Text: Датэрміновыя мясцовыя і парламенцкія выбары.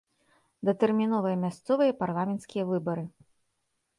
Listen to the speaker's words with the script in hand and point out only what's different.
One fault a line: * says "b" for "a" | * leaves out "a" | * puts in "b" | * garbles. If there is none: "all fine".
all fine